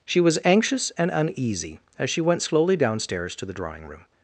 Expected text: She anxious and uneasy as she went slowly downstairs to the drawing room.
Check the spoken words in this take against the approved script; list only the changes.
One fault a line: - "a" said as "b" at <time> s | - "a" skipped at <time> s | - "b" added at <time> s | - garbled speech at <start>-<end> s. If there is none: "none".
- "was" added at 0.2 s